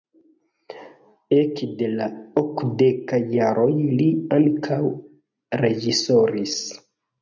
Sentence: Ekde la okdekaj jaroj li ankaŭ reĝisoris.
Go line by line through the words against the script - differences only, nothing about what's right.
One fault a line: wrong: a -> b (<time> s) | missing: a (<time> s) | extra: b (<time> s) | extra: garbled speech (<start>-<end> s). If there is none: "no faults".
no faults